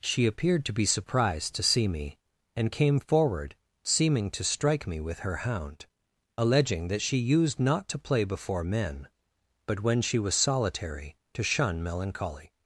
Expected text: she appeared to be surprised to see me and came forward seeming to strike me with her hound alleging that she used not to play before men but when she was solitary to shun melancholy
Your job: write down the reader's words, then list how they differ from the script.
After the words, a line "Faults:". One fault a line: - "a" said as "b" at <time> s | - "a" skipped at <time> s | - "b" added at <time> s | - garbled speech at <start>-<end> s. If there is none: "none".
she appeared to be surprised to see me and came forward seeming to strike me with her hound alleging that she used not to play before men but when she was solitary to shun melancholy
Faults:
none